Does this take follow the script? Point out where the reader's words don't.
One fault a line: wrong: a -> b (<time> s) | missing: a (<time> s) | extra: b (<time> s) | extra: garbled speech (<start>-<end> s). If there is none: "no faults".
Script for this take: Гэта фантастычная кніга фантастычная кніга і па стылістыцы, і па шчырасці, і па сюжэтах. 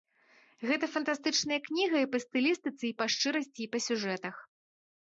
missing: фантастычная кніга (2.0 s)